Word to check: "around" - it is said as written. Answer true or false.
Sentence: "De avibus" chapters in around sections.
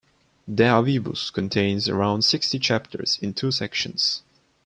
false